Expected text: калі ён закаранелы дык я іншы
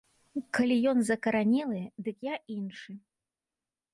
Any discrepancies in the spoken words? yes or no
no